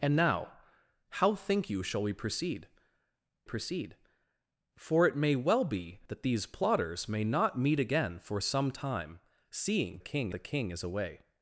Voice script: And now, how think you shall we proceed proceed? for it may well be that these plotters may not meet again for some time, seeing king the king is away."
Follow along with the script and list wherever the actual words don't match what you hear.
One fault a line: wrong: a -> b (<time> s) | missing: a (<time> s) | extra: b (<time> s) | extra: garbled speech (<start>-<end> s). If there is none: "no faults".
no faults